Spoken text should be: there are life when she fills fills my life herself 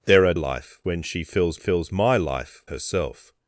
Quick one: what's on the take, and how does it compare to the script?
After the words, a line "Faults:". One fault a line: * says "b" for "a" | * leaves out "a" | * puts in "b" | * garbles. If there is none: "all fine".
there are life when she fills fills my life herself
Faults:
all fine